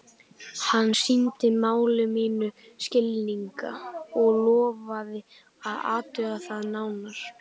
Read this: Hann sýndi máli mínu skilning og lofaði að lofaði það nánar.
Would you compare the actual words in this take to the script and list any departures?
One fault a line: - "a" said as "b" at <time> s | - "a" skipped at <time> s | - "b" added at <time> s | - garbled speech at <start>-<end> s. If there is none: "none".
- "lofaði" said as "athuga" at 6.0 s